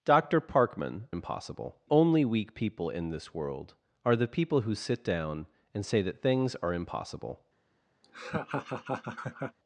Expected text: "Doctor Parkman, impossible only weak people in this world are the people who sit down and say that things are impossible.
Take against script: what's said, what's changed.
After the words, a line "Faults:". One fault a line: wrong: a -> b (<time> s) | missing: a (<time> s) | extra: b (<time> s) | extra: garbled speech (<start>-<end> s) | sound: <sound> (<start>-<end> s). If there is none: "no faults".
"Doctor Parkman, impossible only weak people in this world are the people who sit down and say that things are impossible.
Faults:
sound: laugh (8.0-9.6 s)